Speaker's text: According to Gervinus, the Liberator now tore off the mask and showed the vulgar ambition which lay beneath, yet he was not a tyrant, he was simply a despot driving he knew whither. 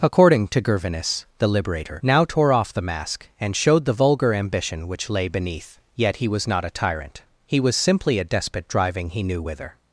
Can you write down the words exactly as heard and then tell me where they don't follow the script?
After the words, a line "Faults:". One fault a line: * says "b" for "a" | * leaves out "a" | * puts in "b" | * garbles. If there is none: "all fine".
According to Gervinus, the Liberator now tore off the mask and showed the vulgar ambition which lay beneath, yet he was not a tyrant, he was simply a despot driving he knew whither.
Faults:
all fine